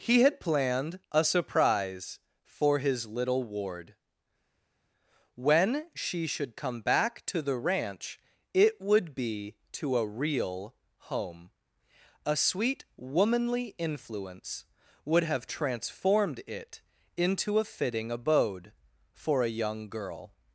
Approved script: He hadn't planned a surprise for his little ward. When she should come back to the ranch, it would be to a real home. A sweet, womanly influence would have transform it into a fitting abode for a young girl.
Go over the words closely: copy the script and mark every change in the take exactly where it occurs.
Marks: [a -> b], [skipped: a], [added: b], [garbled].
He [hadn't -> had] planned a surprise for his little ward. When she should come back to the ranch, it would be to a real home. A sweet, womanly influence would have [transform -> transformed] it into a fitting abode for a young girl.